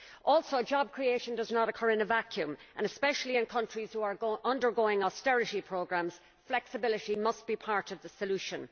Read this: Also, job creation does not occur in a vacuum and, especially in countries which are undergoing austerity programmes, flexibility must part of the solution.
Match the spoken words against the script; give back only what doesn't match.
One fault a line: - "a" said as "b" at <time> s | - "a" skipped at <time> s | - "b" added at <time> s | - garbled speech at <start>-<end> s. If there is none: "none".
- "be" added at 7.5 s